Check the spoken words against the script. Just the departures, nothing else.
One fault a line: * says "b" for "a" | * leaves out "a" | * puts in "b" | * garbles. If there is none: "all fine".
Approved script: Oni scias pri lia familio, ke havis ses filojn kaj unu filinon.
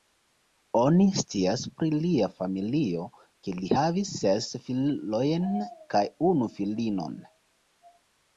* puts in "li"